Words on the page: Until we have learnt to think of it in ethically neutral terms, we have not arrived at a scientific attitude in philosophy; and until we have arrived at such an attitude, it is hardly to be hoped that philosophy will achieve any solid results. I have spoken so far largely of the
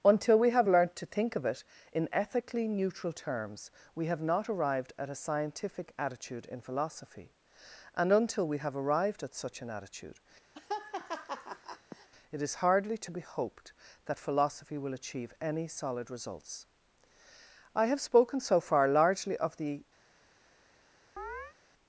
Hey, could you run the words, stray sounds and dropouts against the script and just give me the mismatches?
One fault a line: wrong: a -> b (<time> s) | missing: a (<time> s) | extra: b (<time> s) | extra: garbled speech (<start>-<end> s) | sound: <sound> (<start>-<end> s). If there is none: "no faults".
sound: laugh (10.5-12.1 s)
sound: chirp (21.2-21.6 s)